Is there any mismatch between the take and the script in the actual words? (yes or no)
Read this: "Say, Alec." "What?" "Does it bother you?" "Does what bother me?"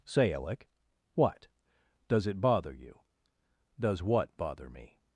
no